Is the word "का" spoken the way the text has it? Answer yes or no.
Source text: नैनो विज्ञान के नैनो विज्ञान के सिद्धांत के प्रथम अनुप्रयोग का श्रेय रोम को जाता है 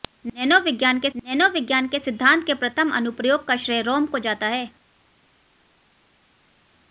yes